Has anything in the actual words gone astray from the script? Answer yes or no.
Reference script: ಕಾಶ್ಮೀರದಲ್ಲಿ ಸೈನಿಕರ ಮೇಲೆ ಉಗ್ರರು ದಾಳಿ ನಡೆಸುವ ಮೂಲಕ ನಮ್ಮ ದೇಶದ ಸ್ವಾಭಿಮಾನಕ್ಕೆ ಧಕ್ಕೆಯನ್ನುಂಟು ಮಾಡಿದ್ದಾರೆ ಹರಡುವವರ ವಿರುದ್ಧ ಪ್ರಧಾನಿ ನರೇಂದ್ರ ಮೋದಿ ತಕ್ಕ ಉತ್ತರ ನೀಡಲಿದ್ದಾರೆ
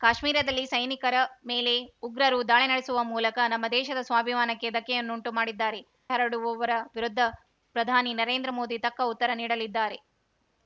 no